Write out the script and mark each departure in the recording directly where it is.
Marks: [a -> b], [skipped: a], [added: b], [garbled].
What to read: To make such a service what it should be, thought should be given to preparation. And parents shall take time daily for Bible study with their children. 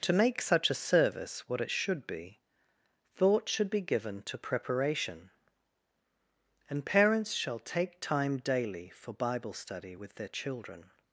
To make such a service what it should be, thought should be given to preparation. And parents shall take time daily for Bible study with their children.